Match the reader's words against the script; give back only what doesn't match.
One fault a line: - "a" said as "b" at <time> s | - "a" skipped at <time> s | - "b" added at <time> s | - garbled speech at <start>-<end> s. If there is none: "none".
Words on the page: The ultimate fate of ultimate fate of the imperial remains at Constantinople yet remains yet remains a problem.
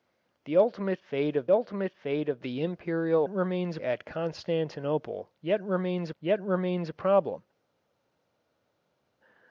none